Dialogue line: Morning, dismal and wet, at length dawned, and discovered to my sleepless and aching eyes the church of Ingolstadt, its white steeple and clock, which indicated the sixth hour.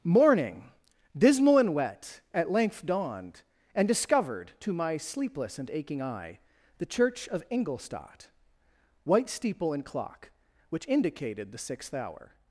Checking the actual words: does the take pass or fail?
fail